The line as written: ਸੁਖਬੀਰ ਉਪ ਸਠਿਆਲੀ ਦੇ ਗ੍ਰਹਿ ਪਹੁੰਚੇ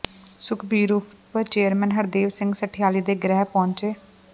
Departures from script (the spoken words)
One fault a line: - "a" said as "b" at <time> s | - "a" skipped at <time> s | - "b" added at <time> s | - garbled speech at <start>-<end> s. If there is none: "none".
- "ਚੇਅਰਮੈਨ ਹਰਦੇਵ ਸਿੰਘ" added at 1.4 s